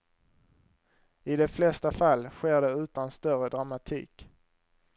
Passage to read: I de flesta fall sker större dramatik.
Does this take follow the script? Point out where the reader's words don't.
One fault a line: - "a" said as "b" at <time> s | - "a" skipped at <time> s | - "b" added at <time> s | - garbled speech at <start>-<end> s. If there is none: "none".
- "det utan" added at 2.6 s